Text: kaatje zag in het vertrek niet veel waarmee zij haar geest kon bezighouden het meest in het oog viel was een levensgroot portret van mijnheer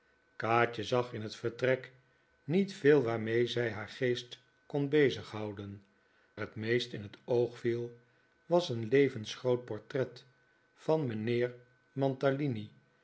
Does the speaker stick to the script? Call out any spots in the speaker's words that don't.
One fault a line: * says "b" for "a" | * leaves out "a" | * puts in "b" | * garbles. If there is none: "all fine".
all fine